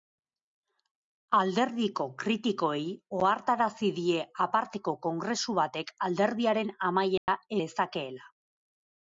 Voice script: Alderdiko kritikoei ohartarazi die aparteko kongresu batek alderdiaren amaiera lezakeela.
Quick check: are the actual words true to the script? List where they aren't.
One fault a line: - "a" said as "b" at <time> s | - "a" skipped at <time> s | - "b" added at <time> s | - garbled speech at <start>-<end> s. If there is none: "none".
none